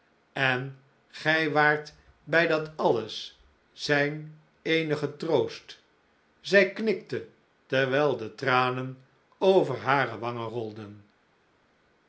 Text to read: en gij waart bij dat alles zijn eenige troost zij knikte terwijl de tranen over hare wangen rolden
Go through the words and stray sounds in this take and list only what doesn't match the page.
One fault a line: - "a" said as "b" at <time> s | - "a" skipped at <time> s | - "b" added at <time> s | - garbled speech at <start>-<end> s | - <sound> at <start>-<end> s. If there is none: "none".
none